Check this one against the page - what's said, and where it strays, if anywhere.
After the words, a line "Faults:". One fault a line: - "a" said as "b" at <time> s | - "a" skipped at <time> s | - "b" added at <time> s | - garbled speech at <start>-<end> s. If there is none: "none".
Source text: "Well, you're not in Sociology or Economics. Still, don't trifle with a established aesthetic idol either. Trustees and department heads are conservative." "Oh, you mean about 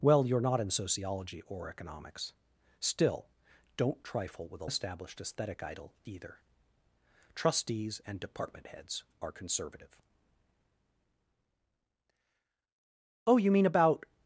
"Well, you're not in Sociology or Economics. Still, don't trifle with a established aesthetic idol either. Trustees and department heads are conservative." "Oh, you mean about
Faults:
none